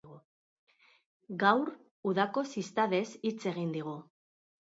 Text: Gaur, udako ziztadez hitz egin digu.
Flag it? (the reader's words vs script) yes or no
no